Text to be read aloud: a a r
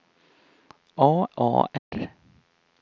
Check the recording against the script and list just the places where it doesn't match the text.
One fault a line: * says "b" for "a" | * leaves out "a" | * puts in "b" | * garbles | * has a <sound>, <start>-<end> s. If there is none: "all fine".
* has a dropout, 1.8-1.9 s